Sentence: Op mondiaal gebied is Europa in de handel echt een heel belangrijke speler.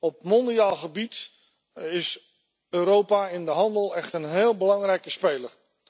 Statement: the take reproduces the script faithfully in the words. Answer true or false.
true